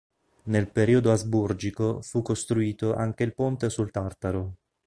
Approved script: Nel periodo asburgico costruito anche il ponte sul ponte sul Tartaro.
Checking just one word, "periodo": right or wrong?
right